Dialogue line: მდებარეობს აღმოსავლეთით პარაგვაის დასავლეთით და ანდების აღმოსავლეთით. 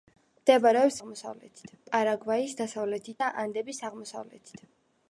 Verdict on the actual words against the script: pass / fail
pass